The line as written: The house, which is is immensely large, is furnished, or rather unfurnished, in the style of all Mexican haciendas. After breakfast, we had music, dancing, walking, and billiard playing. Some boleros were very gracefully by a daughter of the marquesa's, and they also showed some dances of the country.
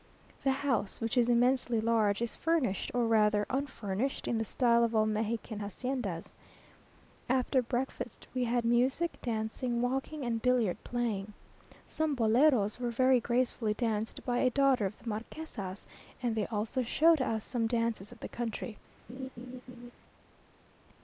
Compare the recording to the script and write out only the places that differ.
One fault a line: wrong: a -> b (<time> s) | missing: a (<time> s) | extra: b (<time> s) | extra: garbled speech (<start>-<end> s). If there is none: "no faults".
missing: is (1.3 s)
extra: danced (13.7 s)
extra: us (17.2 s)